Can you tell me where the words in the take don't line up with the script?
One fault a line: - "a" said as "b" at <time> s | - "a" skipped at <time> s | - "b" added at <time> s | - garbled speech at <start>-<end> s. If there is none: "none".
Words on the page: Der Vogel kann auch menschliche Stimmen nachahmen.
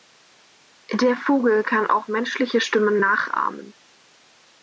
none